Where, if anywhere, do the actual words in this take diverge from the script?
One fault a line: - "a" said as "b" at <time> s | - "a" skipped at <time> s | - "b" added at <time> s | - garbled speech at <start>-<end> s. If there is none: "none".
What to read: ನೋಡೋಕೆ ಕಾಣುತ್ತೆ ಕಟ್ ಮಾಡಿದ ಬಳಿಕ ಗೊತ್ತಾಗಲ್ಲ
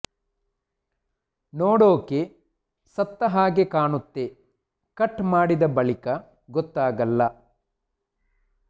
- "ಸತ್ತ ಹಾಗೆ" added at 3.0 s